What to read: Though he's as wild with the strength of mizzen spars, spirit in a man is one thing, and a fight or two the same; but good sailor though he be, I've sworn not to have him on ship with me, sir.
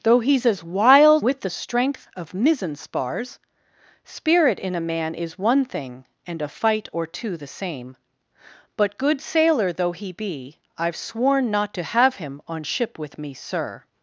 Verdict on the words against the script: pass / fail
pass